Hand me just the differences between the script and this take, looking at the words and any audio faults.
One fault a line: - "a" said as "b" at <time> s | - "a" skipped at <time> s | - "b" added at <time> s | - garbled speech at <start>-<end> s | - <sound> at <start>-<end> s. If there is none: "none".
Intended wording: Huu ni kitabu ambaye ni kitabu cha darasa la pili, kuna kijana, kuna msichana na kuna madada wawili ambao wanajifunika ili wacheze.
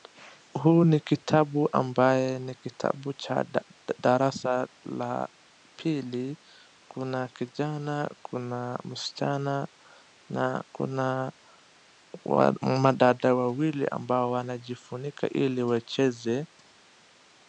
none